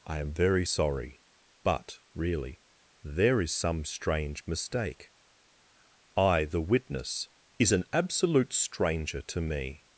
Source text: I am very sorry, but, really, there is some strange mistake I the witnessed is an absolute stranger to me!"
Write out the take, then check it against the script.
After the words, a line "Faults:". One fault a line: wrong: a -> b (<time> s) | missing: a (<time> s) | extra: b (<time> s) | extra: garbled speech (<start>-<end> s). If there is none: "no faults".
I am very sorry, but, really, there is some strange mistake I the witness is an absolute stranger to me!"
Faults:
wrong: witnessed -> witness (6.6 s)